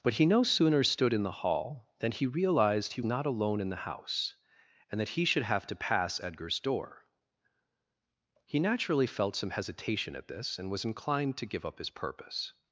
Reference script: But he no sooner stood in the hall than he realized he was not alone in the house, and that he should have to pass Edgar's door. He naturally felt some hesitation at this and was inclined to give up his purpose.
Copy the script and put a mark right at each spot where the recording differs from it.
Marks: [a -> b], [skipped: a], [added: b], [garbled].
But he no sooner stood in the hall than he realized he [skipped: was] not alone in the house, and that he should have to pass Edgar's door. He naturally felt some hesitation at this and was inclined to give up his purpose.